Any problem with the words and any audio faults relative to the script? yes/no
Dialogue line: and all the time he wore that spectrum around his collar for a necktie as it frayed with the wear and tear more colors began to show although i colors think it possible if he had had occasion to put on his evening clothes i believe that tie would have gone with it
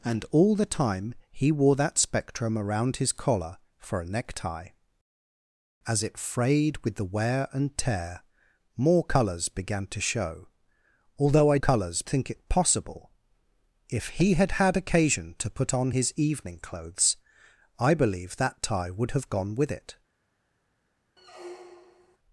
yes